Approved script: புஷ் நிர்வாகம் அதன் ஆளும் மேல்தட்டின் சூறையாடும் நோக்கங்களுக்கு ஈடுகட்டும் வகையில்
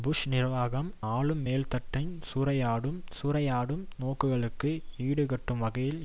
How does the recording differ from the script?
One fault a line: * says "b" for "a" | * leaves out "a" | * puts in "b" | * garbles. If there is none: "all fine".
* leaves out "அதன்"
* puts in "சூறையாடும்"